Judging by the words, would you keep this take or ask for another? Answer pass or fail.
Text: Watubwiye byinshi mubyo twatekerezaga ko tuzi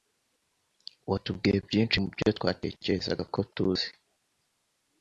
pass